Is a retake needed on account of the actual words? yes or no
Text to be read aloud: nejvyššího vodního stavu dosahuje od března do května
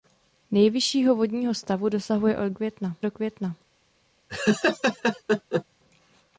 yes